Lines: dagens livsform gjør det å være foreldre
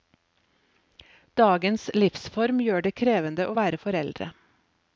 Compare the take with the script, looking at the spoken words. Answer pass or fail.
fail